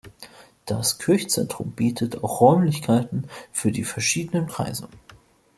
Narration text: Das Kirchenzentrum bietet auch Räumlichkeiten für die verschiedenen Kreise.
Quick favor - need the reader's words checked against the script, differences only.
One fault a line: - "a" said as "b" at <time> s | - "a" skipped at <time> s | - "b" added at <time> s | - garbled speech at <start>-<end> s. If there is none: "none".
none